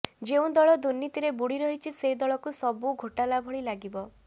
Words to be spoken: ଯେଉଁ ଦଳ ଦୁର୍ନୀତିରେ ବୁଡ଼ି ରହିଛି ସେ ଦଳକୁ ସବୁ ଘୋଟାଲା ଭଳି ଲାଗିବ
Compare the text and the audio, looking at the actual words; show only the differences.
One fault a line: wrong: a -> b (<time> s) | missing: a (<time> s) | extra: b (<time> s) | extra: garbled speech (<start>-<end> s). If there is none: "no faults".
no faults